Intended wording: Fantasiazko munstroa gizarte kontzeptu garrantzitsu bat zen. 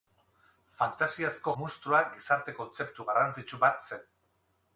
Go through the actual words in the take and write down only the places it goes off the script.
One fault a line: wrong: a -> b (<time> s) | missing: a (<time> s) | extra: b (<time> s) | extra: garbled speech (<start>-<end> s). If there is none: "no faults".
no faults